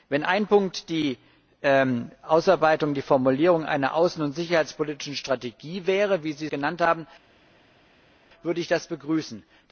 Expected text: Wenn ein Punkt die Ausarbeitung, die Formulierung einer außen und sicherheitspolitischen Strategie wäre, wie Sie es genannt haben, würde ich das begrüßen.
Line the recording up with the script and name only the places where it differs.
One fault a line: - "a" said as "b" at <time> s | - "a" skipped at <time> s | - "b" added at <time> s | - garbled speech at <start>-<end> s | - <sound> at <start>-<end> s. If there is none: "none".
- "es" skipped at 6.5 s